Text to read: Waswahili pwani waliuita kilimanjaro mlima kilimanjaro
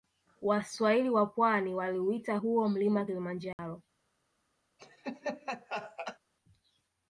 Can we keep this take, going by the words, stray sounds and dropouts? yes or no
no